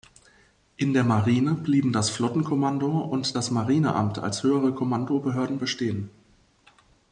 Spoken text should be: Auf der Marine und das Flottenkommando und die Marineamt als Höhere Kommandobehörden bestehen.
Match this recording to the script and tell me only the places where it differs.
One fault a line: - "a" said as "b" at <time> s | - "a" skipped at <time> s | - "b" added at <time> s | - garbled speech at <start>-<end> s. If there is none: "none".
- "Auf" said as "In" at 0.8 s
- "und" said as "blieben" at 1.5 s
- "die" said as "das" at 3.3 s